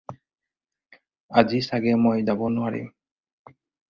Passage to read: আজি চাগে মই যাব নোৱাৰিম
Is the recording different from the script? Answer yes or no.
no